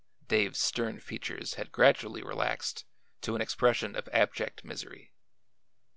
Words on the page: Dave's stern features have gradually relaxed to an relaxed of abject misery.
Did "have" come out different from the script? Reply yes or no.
yes